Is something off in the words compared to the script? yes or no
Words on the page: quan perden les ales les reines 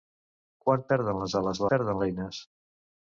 yes